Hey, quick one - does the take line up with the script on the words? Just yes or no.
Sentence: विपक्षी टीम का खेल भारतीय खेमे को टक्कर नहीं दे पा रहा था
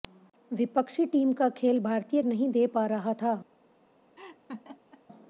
no